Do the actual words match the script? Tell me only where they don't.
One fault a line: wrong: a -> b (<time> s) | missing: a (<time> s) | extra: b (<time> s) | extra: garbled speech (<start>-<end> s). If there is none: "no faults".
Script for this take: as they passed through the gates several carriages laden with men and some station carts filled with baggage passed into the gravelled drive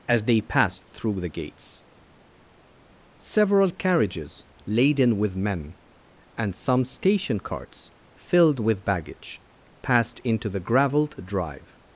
no faults